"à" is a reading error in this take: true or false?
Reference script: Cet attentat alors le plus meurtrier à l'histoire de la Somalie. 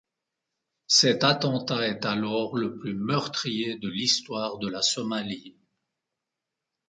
true